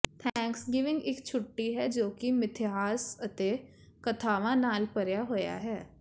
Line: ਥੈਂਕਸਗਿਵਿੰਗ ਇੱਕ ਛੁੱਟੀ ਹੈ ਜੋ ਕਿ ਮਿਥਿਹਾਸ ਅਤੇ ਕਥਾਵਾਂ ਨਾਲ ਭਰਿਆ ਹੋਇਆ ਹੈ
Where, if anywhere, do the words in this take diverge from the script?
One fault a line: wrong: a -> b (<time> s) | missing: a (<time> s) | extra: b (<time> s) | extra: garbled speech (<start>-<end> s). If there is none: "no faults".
no faults